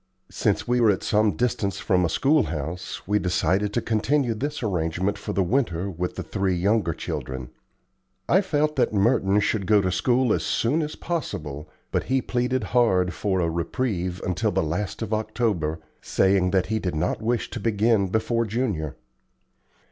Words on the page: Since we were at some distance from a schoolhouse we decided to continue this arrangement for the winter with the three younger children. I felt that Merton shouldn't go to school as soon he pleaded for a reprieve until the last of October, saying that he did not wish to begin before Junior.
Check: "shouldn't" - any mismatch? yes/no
yes